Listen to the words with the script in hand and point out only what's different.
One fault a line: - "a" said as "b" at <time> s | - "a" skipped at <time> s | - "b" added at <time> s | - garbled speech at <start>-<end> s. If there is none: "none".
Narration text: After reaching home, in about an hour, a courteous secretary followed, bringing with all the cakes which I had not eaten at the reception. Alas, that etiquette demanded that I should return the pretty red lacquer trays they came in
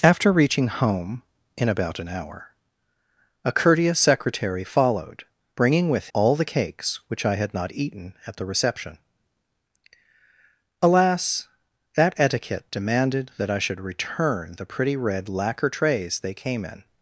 none